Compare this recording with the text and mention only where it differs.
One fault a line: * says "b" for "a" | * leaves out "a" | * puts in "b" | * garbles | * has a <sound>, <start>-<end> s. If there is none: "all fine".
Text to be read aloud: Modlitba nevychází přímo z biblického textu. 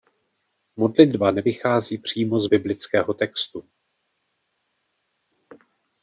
all fine